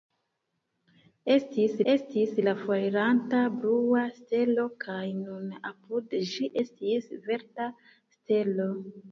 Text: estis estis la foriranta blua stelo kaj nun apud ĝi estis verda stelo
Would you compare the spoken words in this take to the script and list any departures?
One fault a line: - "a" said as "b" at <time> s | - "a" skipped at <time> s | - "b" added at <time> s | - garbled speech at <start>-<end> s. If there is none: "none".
none